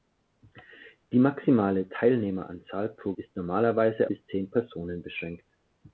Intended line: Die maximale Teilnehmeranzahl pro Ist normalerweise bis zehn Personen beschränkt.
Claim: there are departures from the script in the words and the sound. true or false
false